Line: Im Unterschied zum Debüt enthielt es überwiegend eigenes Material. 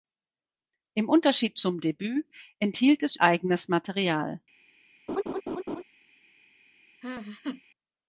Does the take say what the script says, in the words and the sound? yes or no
no